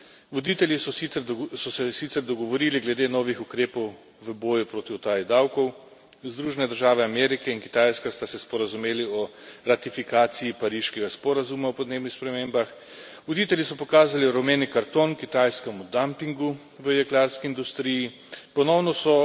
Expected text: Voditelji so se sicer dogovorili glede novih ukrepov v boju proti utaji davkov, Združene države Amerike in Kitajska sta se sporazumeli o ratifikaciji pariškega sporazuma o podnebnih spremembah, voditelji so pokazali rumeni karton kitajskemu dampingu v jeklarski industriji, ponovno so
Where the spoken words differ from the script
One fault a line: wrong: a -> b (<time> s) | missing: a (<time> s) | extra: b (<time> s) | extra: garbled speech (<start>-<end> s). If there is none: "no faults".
no faults